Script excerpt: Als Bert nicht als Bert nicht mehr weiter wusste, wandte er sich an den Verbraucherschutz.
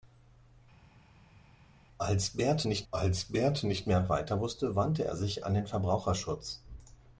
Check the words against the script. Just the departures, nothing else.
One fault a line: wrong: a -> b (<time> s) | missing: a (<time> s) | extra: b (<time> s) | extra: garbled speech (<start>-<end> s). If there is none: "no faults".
no faults